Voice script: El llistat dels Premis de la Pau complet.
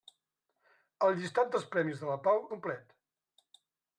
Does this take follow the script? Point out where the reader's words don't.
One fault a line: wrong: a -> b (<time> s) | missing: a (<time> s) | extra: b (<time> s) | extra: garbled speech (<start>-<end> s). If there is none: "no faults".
no faults